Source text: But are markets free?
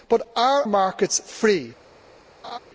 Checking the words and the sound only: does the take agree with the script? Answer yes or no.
no